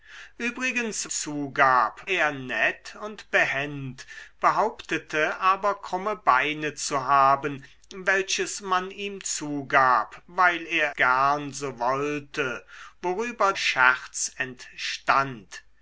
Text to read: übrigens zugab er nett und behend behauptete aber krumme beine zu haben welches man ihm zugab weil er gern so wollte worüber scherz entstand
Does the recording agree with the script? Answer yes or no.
yes